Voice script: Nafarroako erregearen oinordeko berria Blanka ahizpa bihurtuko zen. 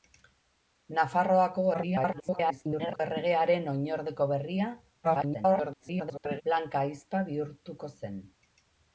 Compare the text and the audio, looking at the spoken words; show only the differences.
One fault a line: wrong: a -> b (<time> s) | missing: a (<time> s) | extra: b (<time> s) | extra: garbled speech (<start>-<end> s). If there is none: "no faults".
extra: garbled speech (1.7-3.0 s)
extra: garbled speech (5.0-6.4 s)